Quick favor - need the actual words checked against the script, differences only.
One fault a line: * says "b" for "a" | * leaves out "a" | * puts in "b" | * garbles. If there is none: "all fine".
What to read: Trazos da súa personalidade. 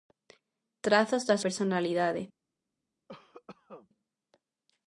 * leaves out "súa"